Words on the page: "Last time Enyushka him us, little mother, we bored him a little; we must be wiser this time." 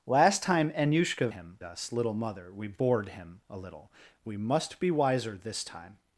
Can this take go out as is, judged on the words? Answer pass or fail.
pass